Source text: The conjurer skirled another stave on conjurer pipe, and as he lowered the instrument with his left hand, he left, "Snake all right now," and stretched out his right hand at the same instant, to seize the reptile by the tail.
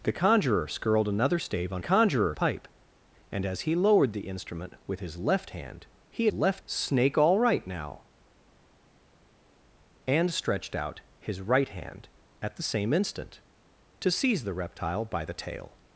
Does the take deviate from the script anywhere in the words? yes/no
no